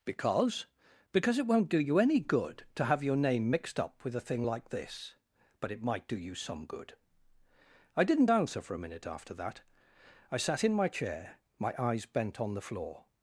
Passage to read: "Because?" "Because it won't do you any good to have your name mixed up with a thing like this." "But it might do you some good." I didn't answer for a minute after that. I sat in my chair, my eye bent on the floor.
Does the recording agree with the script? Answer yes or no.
no